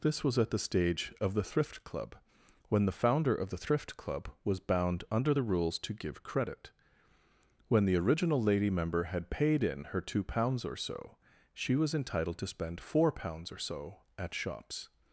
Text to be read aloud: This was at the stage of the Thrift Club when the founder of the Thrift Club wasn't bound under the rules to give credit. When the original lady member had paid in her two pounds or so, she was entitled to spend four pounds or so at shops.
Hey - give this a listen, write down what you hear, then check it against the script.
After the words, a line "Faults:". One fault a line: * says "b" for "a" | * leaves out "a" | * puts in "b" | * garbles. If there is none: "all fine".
This was at the stage of the Thrift Club when the founder of the Thrift Club was bound under the rules to give credit. When the original lady member had paid in her two pounds or so, she was entitled to spend four pounds or so at shops.
Faults:
* says "was" for "wasn't"